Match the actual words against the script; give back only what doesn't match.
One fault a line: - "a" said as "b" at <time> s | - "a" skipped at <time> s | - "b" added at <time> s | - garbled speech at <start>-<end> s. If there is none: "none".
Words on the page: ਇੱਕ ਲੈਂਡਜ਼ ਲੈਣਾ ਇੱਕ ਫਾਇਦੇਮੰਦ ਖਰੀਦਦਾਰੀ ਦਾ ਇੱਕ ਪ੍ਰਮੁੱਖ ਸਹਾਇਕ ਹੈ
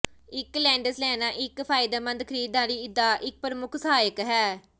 none